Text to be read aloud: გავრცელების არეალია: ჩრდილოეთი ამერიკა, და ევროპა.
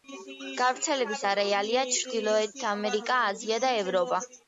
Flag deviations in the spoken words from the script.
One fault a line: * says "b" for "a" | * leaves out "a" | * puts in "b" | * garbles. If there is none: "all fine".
* puts in "აზია"